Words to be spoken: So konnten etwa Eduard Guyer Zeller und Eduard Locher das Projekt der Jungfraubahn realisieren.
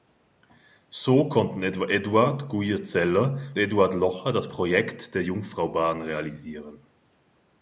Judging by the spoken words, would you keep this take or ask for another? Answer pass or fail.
fail